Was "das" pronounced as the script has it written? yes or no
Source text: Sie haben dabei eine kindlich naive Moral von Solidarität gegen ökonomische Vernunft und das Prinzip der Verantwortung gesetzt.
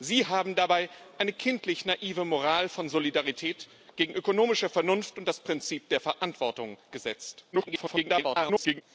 yes